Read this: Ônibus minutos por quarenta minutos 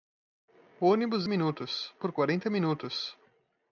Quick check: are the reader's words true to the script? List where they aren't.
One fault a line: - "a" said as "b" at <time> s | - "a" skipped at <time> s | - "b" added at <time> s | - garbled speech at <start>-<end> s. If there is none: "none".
none